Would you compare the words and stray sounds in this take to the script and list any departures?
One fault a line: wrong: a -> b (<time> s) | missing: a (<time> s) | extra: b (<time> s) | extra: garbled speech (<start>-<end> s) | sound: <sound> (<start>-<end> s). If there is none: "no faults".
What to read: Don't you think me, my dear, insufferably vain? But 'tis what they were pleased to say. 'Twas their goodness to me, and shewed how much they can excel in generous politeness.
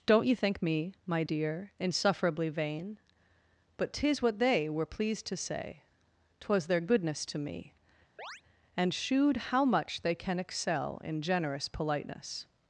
sound: chirp (8.2-8.4 s)